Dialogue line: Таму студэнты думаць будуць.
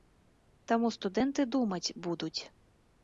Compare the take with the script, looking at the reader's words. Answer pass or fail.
pass